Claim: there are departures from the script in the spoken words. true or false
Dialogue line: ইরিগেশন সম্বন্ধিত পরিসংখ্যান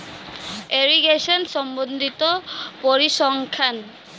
false